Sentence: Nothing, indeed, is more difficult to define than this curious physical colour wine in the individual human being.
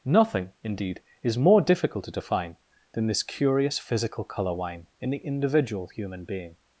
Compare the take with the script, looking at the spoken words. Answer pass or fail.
pass